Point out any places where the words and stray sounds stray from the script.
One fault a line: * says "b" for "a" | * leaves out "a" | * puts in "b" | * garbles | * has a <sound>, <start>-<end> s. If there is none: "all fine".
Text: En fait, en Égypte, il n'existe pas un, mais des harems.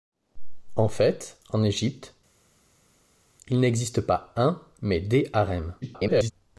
* garbles